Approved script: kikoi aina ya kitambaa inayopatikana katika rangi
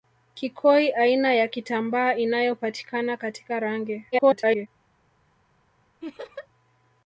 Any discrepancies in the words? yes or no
yes